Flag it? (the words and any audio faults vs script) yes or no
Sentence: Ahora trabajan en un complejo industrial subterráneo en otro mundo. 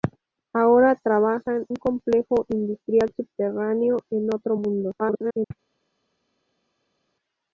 yes